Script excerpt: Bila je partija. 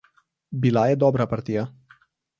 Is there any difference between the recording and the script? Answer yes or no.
yes